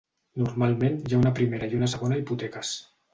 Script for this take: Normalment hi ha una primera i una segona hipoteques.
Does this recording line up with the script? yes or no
yes